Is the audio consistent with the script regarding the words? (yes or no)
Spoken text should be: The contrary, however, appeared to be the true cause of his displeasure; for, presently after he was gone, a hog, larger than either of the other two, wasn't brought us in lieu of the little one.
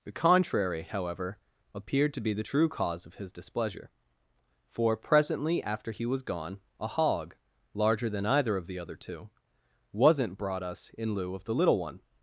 yes